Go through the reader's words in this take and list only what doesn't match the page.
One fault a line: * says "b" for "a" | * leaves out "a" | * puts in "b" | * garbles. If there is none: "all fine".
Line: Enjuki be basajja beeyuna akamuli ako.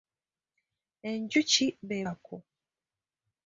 * leaves out "basajja beeyuna akamuli"